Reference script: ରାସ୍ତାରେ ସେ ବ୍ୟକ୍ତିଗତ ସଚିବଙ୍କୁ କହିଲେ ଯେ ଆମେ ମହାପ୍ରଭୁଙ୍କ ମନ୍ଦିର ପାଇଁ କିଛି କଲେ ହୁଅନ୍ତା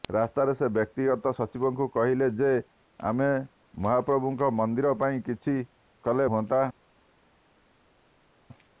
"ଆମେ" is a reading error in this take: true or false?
false